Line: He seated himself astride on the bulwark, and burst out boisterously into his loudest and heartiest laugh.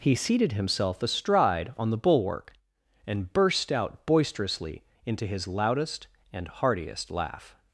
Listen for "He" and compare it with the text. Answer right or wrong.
right